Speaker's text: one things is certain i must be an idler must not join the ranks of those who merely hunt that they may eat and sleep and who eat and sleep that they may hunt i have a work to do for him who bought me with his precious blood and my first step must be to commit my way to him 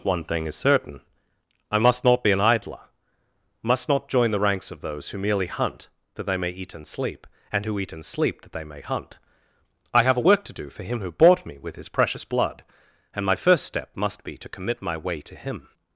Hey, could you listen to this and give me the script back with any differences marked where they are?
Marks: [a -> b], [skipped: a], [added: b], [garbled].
one [things -> thing] is certain i must [added: not] be an idler must not join the ranks of those who merely hunt that they may eat and sleep and who eat and sleep that they may hunt i have a work to do for him who bought me with his precious blood and my first step must be to commit my way to him